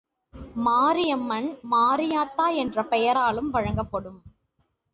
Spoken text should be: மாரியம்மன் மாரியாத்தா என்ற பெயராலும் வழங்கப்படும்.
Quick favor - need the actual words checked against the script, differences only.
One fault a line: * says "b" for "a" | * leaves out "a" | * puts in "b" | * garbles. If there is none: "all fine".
all fine